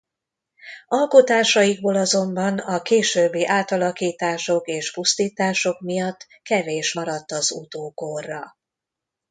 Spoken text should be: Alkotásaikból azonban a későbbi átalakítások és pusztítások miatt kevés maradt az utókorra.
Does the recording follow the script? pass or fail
pass